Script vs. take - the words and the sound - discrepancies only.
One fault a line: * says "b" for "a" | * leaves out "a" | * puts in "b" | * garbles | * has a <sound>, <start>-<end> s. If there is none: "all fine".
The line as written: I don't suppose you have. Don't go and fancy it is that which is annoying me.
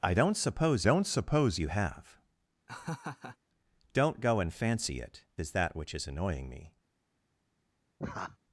* puts in "don't suppose"
* has a laugh, 2.7-3.4 s
* has a laugh, 8.0-8.4 s